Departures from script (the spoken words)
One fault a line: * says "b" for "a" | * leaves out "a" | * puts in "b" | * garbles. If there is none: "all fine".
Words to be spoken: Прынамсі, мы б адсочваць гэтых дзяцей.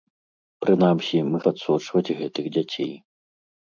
all fine